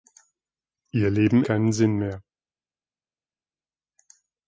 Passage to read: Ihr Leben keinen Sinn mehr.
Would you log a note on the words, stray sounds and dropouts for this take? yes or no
no